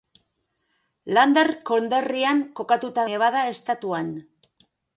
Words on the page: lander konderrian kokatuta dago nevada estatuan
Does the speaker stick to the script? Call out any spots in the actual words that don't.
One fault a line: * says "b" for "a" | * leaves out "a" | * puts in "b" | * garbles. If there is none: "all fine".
* leaves out "dago"